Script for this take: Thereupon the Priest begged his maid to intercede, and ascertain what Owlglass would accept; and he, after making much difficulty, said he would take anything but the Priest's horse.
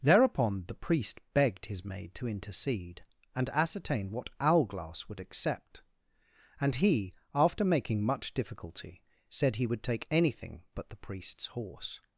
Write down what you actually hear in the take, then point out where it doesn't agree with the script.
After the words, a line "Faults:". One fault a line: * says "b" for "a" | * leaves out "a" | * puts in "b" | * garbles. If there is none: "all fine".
Thereupon the Priest begged his maid to intercede, and ascertain what Owlglass would accept; and he, after making much difficulty, said he would take anything but the Priest's horse.
Faults:
all fine